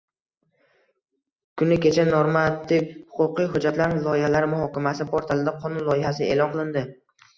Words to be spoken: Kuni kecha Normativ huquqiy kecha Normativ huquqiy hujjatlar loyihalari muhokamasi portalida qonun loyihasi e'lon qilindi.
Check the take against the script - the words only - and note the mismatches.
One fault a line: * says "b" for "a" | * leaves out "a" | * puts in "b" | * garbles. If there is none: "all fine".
* leaves out "kecha Normativ huquqiy"